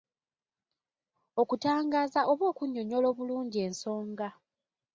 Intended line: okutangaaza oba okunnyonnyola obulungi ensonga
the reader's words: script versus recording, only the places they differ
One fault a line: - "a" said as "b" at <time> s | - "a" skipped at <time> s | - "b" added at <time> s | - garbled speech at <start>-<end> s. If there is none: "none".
none